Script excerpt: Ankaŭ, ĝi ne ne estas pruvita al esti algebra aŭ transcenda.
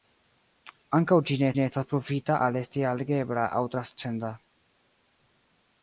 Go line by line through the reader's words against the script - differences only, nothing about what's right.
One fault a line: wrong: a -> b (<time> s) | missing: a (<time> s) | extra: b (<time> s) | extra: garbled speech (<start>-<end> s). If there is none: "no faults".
no faults